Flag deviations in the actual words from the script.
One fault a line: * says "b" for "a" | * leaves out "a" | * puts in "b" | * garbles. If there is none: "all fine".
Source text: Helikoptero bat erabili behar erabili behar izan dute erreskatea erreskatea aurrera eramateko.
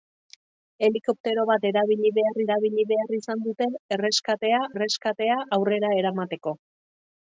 all fine